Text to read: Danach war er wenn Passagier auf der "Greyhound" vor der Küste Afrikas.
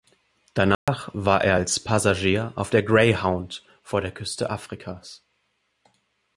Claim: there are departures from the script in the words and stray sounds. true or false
true